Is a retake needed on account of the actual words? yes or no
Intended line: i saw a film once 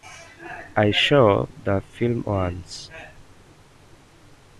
yes